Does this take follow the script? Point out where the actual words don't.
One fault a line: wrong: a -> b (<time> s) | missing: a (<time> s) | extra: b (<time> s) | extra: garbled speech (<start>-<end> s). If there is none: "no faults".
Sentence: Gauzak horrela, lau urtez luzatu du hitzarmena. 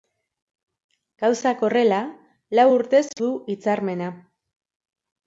missing: luzatu (3.0 s)